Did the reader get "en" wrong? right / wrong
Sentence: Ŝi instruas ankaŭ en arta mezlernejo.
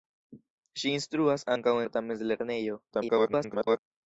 wrong